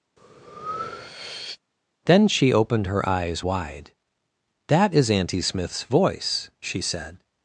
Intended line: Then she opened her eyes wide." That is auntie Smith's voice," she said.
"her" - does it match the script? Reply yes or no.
yes